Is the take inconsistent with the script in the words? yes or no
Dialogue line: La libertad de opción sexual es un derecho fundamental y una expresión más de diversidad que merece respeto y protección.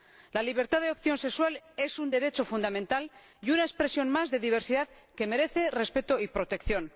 no